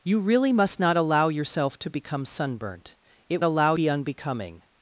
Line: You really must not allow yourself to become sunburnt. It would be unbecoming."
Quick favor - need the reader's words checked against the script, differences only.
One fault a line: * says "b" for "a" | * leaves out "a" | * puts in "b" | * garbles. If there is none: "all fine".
* says "allow" for "would"